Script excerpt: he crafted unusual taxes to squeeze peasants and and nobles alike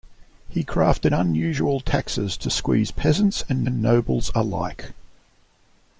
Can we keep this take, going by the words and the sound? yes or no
yes